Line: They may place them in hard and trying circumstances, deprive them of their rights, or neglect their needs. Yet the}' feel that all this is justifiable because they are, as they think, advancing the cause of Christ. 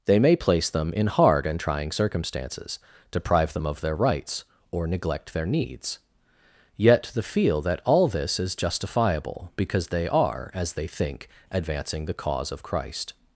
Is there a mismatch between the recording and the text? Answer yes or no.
no